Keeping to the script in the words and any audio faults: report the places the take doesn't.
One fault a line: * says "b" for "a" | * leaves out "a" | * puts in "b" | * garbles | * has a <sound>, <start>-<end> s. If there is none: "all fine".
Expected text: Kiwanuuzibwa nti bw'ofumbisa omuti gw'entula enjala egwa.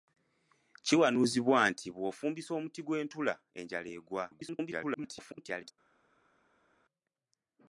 * garbles